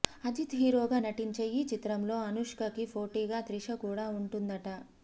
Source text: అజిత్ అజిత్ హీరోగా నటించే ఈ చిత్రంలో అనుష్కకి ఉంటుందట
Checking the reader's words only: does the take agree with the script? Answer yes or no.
no